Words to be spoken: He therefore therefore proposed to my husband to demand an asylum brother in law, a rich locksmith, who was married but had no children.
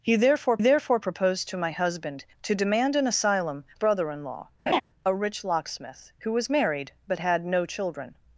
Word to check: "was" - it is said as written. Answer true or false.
true